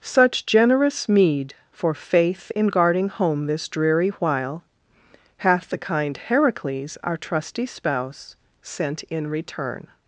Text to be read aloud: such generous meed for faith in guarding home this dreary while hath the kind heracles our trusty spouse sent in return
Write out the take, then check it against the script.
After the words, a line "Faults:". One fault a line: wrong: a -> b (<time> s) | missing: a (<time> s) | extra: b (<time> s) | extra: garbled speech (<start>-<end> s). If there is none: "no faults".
such generous meed for faith in guarding home this dreary while hath the kind heracles our trusty spouse sent in return
Faults:
no faults